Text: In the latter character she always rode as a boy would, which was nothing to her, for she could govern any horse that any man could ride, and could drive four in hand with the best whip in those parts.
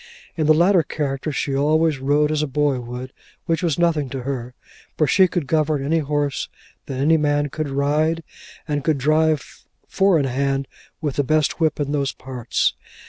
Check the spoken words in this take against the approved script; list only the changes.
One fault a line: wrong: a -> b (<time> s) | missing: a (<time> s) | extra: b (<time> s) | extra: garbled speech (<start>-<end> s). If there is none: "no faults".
no faults